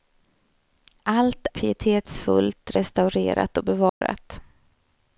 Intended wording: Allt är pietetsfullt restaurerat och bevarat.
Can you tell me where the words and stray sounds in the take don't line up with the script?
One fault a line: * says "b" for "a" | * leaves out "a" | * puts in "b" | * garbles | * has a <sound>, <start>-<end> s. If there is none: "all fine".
* leaves out "är"
* has a dropout, 3.9-4.0 s